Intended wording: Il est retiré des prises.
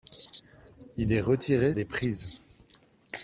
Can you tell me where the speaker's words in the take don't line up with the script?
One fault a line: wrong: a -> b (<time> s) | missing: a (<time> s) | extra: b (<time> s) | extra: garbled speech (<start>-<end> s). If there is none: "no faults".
no faults